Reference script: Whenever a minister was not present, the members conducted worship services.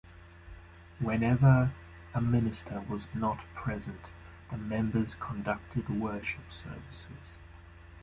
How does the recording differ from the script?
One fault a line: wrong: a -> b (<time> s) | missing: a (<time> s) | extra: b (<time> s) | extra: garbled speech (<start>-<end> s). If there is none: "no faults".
no faults